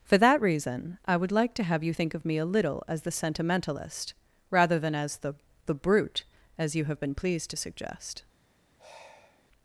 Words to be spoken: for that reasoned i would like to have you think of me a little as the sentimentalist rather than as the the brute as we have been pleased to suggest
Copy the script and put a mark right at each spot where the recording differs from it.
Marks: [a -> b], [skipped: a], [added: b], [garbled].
for that [reasoned -> reason] i would like to have you think of me a little as the sentimentalist rather than as the the brute as [we -> you] have been pleased to suggest